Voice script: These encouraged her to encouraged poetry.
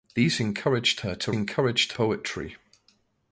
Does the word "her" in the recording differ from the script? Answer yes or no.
no